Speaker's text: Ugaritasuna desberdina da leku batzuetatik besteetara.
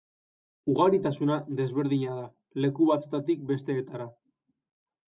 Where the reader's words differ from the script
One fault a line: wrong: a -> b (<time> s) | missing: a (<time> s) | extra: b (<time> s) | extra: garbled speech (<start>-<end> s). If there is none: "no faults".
no faults